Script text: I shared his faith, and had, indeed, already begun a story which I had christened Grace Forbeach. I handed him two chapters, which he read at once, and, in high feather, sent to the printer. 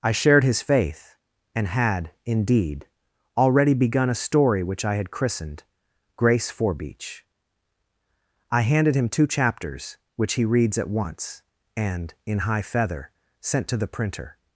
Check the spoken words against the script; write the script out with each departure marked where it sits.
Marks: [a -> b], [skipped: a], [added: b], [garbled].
I shared his faith, and had, indeed, already begun a story which I had christened Grace Forbeach. I handed him two chapters, which he [read -> reads] at once, and, in high feather, sent to the printer.